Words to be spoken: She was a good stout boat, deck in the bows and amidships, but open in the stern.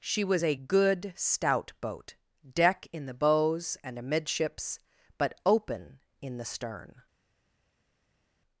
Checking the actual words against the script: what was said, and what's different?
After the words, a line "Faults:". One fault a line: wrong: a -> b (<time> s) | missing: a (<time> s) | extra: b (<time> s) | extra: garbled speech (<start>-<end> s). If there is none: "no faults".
She was a good stout boat, deck in the bows and amidships, but open in the stern.
Faults:
no faults